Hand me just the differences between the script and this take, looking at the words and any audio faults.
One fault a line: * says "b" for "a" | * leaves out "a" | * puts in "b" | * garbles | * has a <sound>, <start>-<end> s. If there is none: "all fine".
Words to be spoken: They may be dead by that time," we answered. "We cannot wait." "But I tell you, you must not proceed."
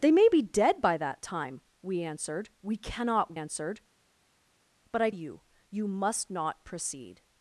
* says "answered" for "wait"
* leaves out "tell"